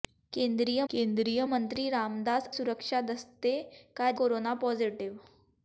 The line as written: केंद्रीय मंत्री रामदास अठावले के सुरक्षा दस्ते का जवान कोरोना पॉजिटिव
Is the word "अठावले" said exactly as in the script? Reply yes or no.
no